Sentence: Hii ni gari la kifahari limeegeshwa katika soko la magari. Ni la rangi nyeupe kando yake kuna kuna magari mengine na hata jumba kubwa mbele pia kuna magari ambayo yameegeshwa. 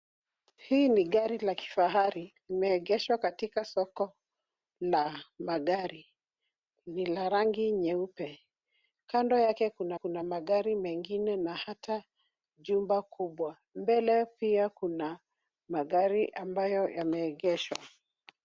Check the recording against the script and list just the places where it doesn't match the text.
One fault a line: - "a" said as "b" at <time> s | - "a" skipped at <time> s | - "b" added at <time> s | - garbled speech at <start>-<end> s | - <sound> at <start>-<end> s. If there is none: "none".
none